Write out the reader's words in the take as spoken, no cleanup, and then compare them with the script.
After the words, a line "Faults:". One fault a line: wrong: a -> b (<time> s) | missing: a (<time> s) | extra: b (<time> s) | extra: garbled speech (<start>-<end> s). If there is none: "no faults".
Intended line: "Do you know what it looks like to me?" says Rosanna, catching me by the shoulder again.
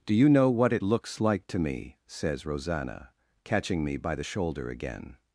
"Do you know what it looks like to me?" says Rosanna, catching me by the shoulder again.
Faults:
no faults